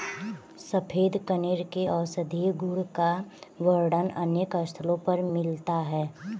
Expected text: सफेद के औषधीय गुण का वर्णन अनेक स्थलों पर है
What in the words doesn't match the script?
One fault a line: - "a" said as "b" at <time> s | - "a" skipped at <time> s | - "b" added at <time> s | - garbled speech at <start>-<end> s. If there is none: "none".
- "कनेर" added at 1.3 s
- "मिलता" added at 5.3 s